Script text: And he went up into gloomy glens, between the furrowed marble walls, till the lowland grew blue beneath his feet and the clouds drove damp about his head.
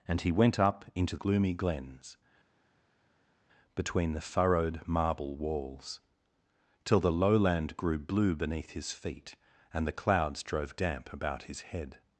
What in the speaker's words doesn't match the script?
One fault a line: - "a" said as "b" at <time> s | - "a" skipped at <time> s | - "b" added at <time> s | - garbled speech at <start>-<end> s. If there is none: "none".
none